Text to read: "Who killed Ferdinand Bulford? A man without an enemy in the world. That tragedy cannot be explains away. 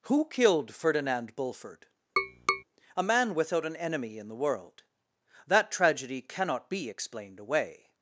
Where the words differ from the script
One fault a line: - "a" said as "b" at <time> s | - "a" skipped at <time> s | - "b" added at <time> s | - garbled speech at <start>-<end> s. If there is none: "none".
- "explains" said as "explained" at 6.9 s